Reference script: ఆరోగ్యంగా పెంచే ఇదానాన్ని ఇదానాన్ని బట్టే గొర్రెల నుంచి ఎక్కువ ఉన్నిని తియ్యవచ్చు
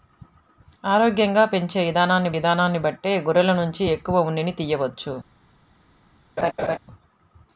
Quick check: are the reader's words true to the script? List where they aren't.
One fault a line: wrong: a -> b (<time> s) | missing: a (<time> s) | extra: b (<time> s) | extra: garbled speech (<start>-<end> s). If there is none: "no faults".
no faults